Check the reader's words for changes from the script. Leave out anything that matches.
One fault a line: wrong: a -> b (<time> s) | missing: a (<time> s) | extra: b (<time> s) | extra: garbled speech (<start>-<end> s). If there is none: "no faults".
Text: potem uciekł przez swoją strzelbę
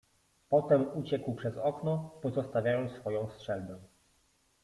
extra: okno pozostawiając (1.6 s)